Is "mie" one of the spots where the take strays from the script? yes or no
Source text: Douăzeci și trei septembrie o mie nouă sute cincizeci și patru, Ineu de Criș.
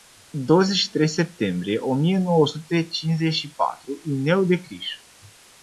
no